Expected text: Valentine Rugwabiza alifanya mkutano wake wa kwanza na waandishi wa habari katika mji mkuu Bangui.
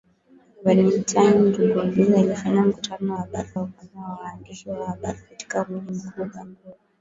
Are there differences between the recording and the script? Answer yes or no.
yes